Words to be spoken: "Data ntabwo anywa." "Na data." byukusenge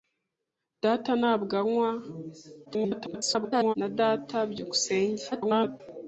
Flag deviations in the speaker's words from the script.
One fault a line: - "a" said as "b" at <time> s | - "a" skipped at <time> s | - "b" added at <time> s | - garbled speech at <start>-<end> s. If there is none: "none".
- garbled speech at 2.7-3.7 s
- garbled speech at 5.3-5.8 s